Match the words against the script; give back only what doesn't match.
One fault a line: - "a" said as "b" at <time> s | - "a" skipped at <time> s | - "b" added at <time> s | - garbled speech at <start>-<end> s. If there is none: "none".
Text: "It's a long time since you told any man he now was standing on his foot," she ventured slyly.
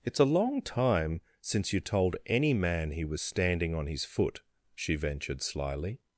- "now" skipped at 3.0 s